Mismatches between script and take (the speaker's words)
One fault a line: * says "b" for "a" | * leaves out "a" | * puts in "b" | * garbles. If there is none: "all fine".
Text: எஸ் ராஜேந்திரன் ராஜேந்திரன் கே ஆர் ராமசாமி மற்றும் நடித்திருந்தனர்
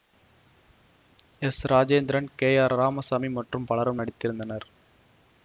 * leaves out "ராஜேந்திரன்"
* puts in "பலரும்"